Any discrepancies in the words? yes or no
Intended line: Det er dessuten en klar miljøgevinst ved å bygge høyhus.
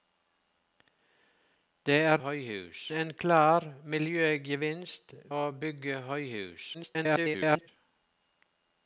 yes